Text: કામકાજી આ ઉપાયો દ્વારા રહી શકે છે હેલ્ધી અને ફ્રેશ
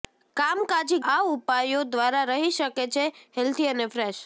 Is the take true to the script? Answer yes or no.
yes